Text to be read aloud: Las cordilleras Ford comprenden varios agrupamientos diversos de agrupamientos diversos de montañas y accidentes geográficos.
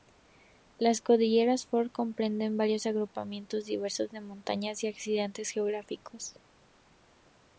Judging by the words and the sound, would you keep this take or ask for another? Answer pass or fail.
fail